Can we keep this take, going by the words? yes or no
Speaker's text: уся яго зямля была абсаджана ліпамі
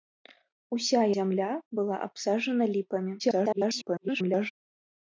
no